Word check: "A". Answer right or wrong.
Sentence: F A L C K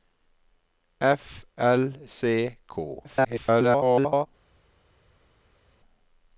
wrong